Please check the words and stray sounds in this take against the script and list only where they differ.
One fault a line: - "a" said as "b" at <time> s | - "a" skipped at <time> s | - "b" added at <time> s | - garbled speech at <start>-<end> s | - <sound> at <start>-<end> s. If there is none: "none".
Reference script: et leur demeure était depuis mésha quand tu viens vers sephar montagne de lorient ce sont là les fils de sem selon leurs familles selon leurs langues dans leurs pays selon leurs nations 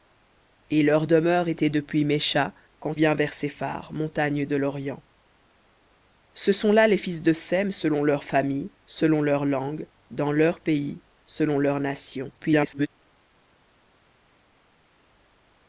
- "tu" skipped at 2.9 s
- garbled speech at 12.4-12.9 s